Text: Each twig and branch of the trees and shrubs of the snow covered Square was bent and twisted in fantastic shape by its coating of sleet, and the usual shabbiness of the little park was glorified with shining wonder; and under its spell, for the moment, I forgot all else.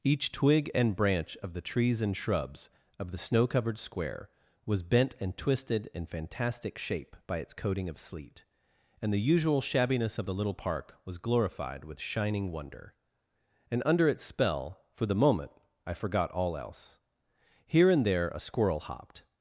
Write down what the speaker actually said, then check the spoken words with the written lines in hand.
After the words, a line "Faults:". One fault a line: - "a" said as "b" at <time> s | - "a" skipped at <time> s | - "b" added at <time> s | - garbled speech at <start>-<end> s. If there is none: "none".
Each twig and branch of the trees and shrubs of the snow covered Square was bent and twisted in fantastic shape by its coating of sleet, and the usual shabbiness of the little park was glorified with shining wonder; and under its spell, for the moment, I forgot all else. Here and there a squirrel hopped
Faults:
- "Here and there a squirrel hopped" added at 17.6 s